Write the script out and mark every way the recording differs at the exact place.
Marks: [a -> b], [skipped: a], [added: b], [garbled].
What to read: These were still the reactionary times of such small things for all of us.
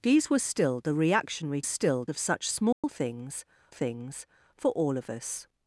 These were still the reactionary [times -> still] of such small things [added: things] for all of us.